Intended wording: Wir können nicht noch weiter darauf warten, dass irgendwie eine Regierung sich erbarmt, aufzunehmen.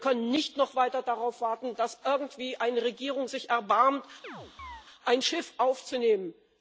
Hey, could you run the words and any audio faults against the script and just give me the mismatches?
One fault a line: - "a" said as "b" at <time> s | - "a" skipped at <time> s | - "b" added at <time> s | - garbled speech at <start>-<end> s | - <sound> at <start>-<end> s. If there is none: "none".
- chirp at 4.2-4.9 s
- "ein Schiff" added at 5.0 s